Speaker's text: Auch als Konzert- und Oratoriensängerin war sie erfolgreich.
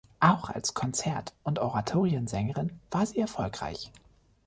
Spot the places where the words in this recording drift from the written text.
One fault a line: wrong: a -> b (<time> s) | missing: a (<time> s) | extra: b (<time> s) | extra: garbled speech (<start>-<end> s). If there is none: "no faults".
no faults